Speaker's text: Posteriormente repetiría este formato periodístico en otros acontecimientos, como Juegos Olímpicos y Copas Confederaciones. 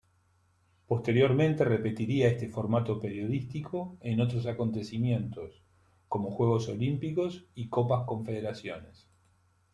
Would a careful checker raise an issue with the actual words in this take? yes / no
no